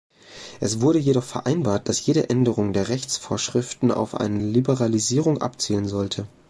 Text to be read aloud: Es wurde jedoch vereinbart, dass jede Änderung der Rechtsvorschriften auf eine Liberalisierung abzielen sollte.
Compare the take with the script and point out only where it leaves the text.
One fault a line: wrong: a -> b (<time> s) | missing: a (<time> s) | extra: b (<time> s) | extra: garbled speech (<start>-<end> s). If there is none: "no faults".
no faults